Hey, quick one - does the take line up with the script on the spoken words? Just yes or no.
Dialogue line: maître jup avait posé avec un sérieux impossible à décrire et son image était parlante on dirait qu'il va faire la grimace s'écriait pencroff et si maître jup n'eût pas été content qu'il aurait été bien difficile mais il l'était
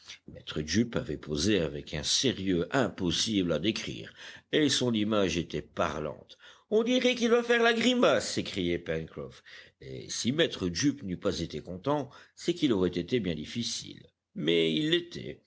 no